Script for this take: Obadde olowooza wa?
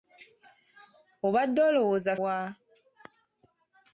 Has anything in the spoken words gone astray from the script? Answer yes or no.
no